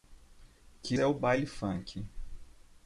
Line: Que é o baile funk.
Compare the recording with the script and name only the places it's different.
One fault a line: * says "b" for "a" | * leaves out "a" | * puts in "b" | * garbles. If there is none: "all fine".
all fine